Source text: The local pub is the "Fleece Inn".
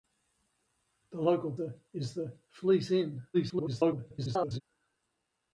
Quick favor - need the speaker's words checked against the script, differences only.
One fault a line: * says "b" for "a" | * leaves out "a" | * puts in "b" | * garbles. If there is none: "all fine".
* says "the" for "pub"
* garbles